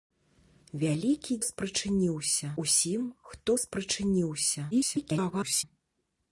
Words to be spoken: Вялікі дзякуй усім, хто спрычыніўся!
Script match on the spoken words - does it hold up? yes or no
no